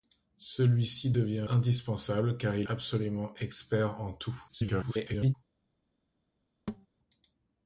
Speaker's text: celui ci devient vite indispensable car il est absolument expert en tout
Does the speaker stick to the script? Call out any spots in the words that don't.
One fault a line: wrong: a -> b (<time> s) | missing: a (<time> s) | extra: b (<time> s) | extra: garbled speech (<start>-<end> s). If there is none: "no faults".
missing: vite (1.5 s)
missing: est (2.7 s)
extra: garbled speech (4.5-5.3 s)